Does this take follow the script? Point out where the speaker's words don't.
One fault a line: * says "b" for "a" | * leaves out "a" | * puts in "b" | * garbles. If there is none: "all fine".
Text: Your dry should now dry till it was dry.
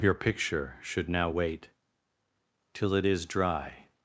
* says "picture" for "dry"
* says "wait" for "dry"
* says "is" for "was"